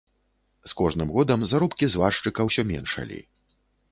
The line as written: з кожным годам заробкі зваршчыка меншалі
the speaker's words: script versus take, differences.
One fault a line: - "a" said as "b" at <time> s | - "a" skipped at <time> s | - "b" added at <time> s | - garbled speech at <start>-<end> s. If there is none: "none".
- "ўсё" added at 2.5 s